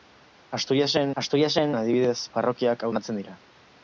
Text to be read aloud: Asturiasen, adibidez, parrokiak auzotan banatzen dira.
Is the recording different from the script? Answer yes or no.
yes